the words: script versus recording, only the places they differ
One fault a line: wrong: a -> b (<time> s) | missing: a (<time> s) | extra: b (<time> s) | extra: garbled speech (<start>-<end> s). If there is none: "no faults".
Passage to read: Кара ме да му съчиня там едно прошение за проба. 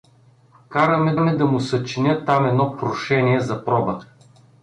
extra: ме (1.2 s)